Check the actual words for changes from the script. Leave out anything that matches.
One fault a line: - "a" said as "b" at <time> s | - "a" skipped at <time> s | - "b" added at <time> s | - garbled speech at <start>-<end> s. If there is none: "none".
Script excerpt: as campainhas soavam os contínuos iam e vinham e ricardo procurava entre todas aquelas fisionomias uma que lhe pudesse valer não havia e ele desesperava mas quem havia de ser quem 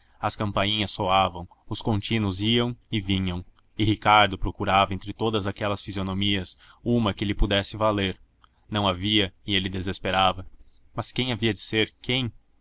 none